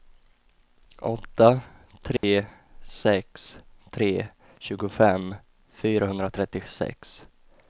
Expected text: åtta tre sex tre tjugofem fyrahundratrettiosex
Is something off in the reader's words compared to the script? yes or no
no